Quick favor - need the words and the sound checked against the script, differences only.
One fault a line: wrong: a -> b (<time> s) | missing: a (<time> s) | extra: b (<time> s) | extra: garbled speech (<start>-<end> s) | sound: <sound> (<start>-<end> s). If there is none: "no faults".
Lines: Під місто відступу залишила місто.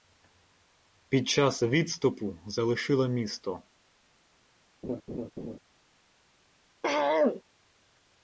wrong: місто -> час (1.3 s)
sound: laugh (4.8-5.6 s)
sound: throat clearing (6.8-7.4 s)